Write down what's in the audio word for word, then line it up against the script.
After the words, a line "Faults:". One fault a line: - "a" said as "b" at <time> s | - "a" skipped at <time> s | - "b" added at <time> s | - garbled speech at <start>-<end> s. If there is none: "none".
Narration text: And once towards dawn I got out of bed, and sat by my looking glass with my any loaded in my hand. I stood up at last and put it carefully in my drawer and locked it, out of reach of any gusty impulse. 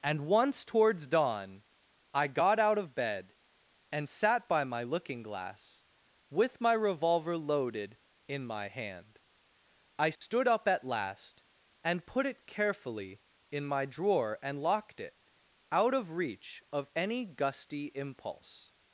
And once towards dawn I got out of bed, and sat by my looking glass with my revolver loaded in my hand. I stood up at last and put it carefully in my drawer and locked it, out of reach of any gusty impulse.
Faults:
- "any" said as "revolver" at 6.7 s